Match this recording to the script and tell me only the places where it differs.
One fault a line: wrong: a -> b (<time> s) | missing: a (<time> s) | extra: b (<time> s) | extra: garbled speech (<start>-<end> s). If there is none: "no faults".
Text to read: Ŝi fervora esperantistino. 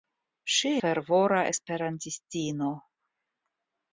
no faults